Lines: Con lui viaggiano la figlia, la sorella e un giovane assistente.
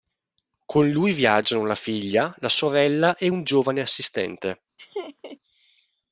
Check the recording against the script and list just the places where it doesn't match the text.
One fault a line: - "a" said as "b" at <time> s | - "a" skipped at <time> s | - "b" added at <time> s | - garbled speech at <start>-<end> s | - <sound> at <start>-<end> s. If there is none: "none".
- laugh at 4.8-5.4 s